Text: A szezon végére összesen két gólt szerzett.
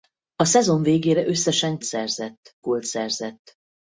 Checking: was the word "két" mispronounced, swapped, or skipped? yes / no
yes